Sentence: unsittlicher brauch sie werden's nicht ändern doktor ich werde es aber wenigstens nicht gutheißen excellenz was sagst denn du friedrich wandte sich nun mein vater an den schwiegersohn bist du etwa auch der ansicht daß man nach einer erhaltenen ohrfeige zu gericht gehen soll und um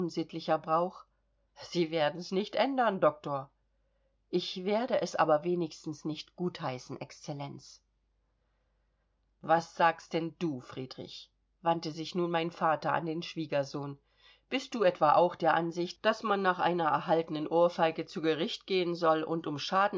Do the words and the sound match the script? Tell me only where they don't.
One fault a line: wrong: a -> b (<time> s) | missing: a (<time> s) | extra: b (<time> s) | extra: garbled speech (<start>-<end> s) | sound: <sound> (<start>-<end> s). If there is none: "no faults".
no faults